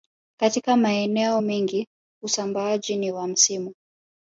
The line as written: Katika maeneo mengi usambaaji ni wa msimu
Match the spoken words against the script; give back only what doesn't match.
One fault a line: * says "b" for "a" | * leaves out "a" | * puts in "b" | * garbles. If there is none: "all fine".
all fine